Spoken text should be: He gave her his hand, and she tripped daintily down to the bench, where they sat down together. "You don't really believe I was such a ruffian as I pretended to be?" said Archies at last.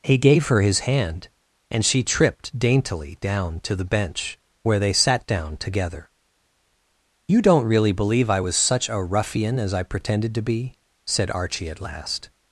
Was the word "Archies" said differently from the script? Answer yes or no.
yes